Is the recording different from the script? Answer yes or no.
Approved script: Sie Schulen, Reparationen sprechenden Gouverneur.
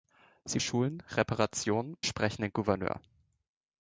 no